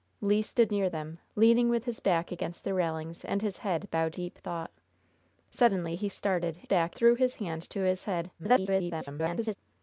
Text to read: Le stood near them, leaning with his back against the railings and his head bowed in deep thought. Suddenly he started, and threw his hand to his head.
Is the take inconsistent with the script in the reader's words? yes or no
yes